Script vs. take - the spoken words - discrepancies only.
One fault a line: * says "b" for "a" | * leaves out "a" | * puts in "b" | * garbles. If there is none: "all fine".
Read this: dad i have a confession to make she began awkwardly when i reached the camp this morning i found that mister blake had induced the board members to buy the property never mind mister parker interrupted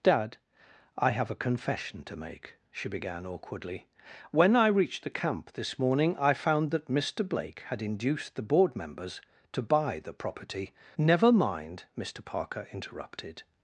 all fine